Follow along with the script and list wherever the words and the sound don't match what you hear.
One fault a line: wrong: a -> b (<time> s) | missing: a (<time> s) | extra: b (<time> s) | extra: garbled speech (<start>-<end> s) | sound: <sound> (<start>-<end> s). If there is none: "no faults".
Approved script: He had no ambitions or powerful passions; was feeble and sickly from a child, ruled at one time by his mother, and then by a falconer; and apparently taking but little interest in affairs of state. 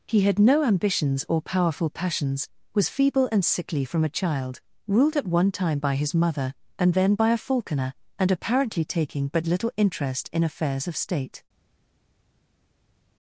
no faults